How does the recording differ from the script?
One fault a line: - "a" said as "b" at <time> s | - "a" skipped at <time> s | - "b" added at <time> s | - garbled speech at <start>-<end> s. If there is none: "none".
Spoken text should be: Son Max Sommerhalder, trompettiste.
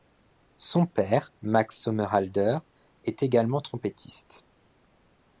- "père" added at 0.9 s
- "est également" added at 3.0 s